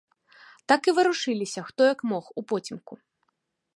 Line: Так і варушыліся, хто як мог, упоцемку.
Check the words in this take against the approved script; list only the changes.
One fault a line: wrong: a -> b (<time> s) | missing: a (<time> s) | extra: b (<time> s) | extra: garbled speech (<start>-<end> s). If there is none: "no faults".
no faults